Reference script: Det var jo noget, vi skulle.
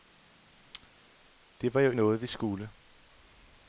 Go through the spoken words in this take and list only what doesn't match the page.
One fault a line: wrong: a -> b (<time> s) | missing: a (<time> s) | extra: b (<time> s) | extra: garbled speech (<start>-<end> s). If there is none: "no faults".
no faults